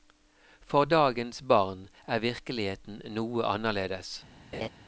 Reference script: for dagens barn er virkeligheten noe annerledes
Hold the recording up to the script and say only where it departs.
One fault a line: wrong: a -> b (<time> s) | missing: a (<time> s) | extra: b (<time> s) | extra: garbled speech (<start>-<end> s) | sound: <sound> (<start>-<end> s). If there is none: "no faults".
sound: laugh (4.5-4.7 s)